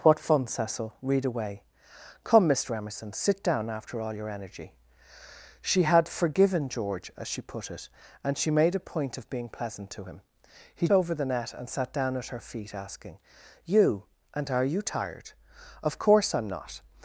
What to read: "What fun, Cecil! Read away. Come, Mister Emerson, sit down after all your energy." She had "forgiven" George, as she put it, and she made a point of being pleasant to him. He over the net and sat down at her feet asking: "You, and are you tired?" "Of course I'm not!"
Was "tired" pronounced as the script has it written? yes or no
yes